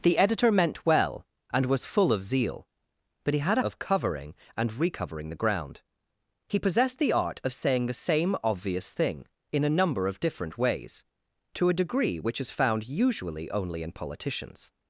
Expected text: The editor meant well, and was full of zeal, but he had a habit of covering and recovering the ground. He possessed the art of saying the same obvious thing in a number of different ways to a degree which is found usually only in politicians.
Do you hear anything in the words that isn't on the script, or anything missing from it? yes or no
yes